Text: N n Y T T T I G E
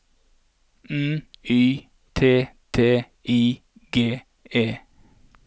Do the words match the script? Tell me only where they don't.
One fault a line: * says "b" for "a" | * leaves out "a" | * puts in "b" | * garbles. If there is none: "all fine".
* leaves out "n"
* leaves out "T"